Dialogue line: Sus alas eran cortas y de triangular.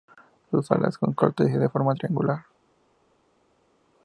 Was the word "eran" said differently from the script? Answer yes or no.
yes